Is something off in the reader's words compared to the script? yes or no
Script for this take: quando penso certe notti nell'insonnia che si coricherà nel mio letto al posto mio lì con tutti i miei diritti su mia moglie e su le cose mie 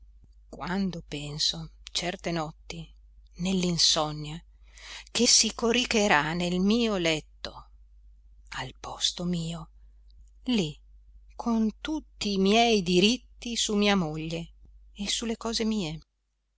no